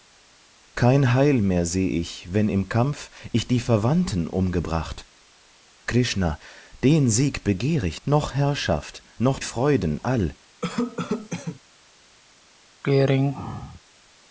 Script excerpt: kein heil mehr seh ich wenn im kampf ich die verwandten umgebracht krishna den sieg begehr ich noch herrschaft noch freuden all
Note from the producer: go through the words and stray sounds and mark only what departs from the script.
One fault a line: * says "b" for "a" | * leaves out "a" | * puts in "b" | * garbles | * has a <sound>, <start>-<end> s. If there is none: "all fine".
* has a cough, 10.6-11.6 s
* has a throat clearing, 12.8-13.8 s